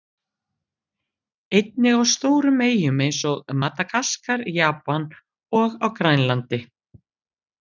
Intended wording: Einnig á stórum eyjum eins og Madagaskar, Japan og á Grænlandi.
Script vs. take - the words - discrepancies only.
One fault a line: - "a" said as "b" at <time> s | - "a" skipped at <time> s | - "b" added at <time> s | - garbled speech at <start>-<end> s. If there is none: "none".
none